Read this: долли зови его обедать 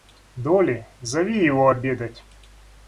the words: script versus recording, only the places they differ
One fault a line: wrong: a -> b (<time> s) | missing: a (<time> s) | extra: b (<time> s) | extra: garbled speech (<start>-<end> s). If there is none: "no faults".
no faults